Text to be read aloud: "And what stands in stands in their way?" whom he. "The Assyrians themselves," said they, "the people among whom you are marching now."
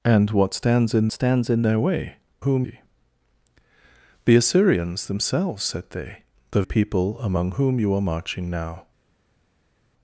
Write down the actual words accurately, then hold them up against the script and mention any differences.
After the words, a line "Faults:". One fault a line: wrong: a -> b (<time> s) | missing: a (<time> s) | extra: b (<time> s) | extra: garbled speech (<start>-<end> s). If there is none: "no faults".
"And what stands in stands in their way?" whom he. "The Assyrians themselves," said they, "the people among whom you are marching now."
Faults:
no faults